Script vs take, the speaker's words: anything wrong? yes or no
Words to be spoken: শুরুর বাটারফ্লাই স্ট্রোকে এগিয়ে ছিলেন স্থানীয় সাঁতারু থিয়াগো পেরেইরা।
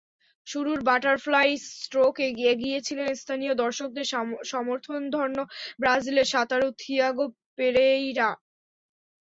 yes